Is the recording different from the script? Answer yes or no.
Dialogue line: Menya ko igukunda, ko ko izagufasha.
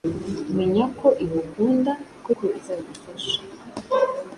no